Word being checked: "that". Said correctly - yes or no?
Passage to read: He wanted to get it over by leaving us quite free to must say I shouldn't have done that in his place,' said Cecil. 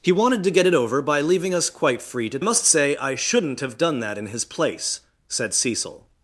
yes